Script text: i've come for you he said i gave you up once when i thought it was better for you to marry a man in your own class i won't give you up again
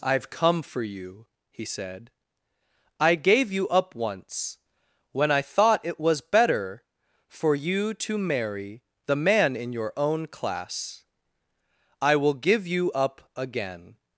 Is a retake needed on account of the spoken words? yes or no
yes